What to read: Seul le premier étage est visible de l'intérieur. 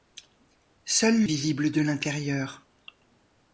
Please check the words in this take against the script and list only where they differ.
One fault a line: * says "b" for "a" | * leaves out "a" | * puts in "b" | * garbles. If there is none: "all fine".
* leaves out "le premier étage"